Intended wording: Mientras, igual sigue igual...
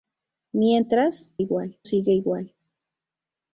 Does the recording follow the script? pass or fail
pass